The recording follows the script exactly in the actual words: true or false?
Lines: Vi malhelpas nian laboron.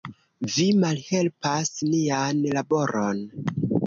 true